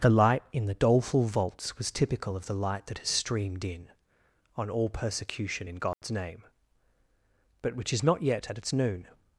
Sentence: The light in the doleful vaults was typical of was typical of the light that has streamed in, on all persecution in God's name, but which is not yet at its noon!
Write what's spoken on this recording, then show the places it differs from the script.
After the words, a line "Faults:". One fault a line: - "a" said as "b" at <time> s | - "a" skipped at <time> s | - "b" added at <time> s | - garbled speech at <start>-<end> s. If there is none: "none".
The light in the doleful vaults was typical of the light that has streamed in, on all persecution in God's name, but which is not yet at its noon!
Faults:
- "was typical of" skipped at 2.5 s